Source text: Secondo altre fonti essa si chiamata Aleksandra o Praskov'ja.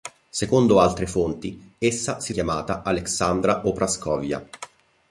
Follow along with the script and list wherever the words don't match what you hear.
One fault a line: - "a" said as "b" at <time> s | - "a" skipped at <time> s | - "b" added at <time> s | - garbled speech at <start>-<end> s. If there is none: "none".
none